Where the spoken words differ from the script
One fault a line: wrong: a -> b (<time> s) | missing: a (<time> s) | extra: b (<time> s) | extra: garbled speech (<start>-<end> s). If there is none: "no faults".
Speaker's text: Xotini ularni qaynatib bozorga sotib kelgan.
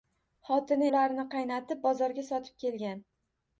no faults